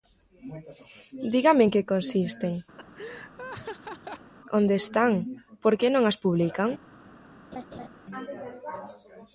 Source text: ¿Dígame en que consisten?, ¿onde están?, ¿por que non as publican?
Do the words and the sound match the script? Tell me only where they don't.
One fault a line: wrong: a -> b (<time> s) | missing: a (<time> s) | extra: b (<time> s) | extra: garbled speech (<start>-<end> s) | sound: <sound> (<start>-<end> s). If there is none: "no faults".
sound: laugh (2.8-4.3 s)
sound: laugh (7.5-7.9 s)